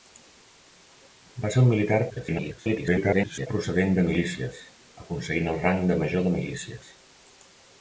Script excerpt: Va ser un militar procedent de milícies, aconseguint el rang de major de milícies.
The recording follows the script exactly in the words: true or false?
false